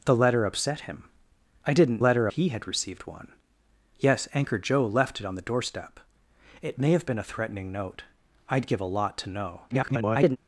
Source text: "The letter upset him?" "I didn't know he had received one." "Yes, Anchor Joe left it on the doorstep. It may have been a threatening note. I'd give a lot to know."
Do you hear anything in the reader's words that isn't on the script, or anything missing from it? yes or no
yes